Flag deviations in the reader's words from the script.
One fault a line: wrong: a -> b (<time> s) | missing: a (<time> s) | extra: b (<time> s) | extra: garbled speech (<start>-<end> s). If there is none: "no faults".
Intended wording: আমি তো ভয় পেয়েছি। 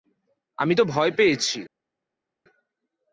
no faults